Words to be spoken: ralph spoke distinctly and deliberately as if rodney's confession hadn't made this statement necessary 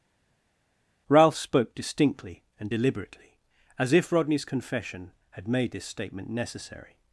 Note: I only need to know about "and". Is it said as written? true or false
true